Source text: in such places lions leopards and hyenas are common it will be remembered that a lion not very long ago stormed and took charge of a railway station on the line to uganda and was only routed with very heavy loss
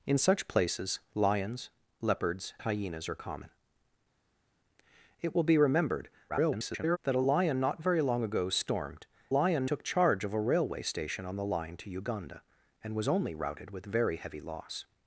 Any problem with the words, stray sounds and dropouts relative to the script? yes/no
yes